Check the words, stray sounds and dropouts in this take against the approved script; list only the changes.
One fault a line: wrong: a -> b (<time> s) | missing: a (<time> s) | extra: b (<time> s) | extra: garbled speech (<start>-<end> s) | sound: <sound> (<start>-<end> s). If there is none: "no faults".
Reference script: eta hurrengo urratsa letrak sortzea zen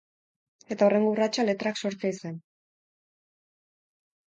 no faults